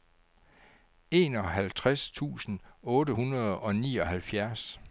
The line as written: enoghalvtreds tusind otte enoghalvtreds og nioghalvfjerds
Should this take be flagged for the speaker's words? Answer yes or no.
yes